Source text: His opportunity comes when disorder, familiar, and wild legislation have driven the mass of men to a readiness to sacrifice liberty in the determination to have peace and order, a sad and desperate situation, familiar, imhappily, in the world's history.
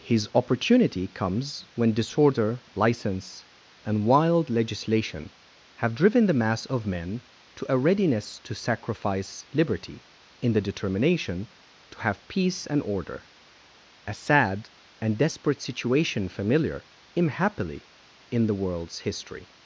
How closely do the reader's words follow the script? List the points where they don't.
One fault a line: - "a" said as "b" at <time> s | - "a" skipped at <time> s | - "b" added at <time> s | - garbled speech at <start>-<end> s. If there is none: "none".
- "familiar" said as "license" at 2.7 s